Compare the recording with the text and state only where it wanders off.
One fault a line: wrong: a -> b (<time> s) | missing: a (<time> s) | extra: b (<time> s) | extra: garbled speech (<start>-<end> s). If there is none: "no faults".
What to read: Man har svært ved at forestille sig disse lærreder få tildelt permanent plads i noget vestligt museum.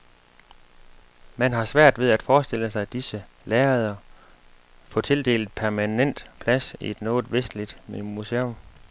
no faults